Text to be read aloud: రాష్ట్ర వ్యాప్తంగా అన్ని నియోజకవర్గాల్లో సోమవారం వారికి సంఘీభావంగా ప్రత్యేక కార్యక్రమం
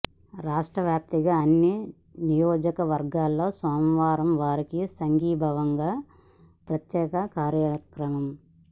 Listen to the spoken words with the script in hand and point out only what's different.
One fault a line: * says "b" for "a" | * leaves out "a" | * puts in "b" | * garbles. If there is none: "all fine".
all fine